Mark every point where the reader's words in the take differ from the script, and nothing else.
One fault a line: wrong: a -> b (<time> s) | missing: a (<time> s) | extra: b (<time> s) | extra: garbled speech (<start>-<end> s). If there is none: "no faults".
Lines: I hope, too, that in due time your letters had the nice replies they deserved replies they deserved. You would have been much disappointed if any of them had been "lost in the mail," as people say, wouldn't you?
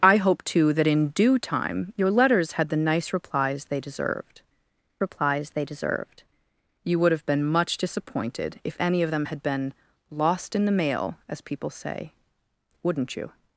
no faults